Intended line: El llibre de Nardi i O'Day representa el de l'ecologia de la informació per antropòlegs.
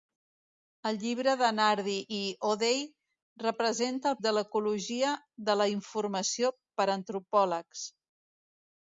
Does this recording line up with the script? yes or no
yes